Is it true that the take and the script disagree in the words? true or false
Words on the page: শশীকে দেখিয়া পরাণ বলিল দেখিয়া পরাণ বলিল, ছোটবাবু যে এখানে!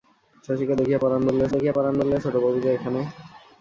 false